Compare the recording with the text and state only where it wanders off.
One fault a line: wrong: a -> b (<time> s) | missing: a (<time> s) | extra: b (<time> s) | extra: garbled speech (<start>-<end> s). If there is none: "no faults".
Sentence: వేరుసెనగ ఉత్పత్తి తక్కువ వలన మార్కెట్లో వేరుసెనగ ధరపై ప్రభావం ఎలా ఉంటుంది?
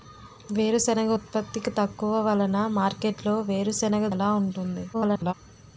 missing: ధరపై ప్రభావం (4.1 s)
extra: garbled speech (4.9-5.3 s)